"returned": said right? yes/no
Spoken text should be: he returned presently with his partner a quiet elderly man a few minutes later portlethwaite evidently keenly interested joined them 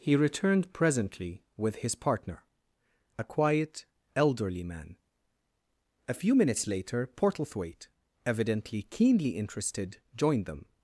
yes